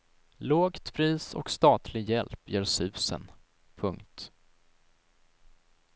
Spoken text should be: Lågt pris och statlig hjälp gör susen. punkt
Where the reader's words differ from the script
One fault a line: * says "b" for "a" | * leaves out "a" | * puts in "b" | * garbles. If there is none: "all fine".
all fine